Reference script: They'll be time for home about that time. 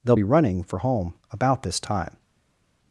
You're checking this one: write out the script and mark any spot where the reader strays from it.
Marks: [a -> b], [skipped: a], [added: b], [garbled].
They'll be [time -> running] for home about [that -> this] time.